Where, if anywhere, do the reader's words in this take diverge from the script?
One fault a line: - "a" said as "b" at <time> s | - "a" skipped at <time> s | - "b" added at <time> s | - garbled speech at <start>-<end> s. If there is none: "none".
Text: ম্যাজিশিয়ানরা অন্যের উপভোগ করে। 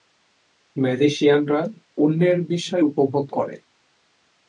- "বিস্ময়" added at 2.5 s